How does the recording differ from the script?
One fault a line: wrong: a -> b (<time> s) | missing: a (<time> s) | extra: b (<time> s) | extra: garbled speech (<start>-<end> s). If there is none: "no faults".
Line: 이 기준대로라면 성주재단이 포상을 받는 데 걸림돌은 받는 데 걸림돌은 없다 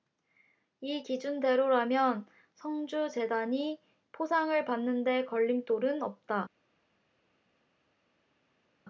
missing: 받는 데 걸림돌은 (6.0 s)